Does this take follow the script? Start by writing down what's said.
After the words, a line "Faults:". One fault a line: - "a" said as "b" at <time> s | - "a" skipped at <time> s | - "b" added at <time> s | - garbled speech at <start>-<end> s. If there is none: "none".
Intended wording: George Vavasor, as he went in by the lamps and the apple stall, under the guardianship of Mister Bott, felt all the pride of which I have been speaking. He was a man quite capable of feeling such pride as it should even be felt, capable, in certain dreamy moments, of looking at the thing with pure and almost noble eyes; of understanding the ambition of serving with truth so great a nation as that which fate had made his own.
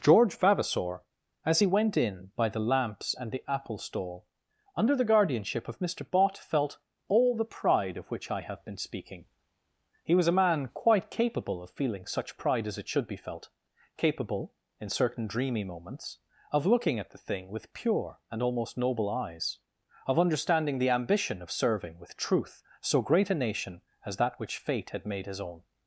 George Vavasor, as he went in by the lamps and the apple stall, under the guardianship of Mister Bott, felt all the pride of which I have been speaking. He was a man quite capable of feeling such pride as it should be felt, capable, in certain dreamy moments, of looking at the thing with pure and almost noble eyes; of understanding the ambition of serving with truth so great a nation as that which fate had made his own.
Faults:
- "even" skipped at 13.1 s